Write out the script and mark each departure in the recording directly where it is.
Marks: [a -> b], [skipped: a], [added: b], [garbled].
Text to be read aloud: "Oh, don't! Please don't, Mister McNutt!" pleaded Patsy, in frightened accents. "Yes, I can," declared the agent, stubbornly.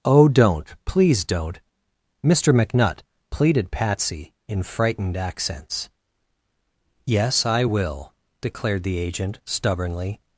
"Oh, don't! Please don't, Mister McNutt!" pleaded Patsy, in frightened accents. "Yes, I [can," -> will] declared the agent, stubbornly.